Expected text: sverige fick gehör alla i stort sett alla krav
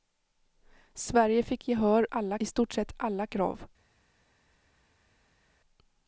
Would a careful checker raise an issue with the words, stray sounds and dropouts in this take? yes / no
no